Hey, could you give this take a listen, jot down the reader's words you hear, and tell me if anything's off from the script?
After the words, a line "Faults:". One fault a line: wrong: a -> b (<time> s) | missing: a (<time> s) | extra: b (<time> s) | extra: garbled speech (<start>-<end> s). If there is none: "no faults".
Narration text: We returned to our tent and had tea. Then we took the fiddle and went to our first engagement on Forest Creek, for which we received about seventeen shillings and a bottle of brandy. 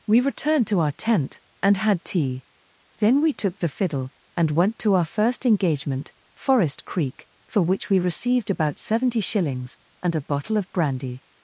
We returned to our tent and had tea. Then we took the fiddle and went to our first engagement Forest Creek, for which we received about seventy shillings and a bottle of brandy.
Faults:
missing: on (6.1 s)
wrong: seventeen -> seventy (8.8 s)